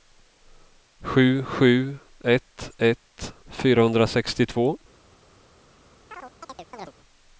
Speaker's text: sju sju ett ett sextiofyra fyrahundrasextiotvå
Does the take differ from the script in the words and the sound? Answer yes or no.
yes